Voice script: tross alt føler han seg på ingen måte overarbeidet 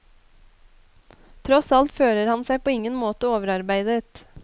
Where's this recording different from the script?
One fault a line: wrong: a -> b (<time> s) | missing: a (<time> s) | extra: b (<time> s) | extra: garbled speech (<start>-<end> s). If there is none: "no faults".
no faults